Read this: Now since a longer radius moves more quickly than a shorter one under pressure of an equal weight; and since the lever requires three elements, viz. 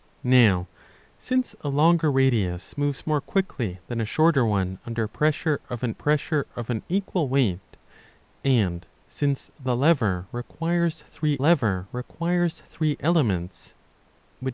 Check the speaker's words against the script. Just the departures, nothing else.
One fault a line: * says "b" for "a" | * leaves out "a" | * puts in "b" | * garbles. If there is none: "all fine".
* puts in "pressure of an"
* puts in "lever requires three"